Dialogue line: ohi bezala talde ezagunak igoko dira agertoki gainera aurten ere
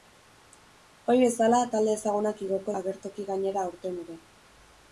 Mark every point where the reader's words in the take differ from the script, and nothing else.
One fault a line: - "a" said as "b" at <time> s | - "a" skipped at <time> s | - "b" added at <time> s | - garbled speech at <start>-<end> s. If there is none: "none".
- "dira" skipped at 2.8 s